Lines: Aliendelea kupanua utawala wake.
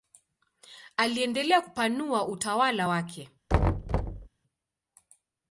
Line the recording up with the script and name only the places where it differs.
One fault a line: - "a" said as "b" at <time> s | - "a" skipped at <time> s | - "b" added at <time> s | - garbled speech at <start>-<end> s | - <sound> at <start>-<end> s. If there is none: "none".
- thud at 3.5-4.3 s